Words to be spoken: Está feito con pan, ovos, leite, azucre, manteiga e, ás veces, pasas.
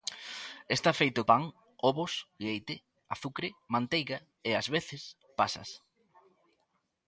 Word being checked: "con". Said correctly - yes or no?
no